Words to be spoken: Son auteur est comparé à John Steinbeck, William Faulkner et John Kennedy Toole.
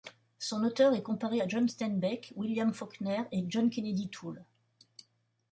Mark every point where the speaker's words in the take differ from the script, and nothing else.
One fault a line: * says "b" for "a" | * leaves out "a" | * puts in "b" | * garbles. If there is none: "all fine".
all fine